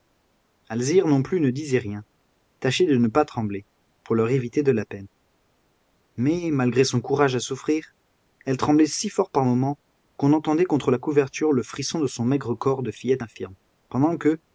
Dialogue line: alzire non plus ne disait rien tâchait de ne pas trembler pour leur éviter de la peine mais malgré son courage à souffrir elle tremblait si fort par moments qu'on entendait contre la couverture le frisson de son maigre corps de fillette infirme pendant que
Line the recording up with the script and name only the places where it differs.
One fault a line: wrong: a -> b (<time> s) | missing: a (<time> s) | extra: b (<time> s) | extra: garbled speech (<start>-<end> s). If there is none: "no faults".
no faults